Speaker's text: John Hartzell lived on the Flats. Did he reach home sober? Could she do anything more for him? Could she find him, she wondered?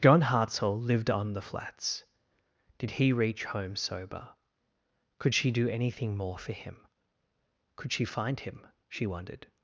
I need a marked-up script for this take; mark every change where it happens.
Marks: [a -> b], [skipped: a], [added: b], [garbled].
John Hartzell lived on the Flats. Did he reach home sober? Could she do anything more for him? Could she find him, she wondered?